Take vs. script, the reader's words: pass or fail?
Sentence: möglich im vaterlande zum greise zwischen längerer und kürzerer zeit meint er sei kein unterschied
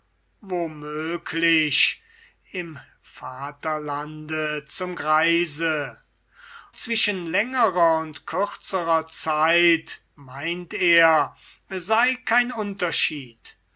pass